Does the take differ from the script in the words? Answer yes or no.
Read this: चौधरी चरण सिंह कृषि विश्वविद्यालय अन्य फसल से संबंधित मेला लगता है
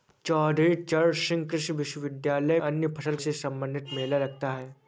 no